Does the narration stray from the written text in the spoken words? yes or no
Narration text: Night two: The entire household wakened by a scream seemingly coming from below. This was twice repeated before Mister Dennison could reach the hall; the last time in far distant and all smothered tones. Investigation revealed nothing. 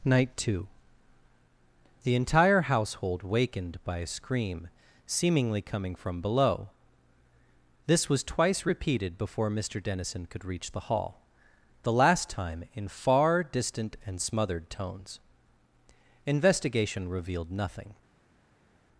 yes